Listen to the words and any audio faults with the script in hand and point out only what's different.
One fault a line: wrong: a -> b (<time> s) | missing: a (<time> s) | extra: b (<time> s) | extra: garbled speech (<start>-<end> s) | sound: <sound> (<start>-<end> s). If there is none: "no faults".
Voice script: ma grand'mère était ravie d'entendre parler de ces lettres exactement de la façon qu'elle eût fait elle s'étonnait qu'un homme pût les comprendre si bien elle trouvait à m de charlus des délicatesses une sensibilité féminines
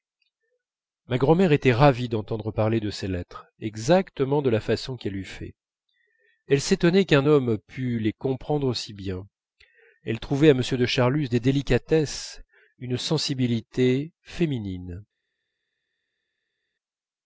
no faults